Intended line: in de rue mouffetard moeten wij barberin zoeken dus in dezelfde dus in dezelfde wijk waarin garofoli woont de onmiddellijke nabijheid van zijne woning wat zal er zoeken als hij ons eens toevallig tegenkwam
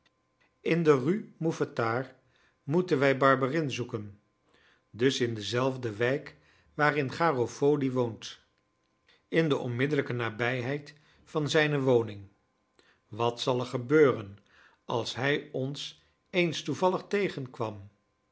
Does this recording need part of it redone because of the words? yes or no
yes